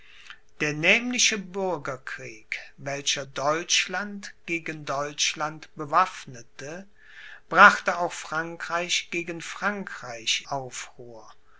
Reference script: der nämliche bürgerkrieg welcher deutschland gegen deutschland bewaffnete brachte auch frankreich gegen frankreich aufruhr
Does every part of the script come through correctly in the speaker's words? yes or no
yes